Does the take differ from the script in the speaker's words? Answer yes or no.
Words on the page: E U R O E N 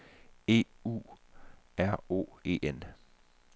no